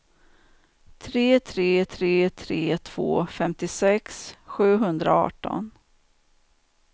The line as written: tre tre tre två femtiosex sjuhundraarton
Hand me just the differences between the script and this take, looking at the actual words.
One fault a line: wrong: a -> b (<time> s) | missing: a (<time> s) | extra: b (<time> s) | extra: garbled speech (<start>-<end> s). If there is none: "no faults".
extra: tre (2.3 s)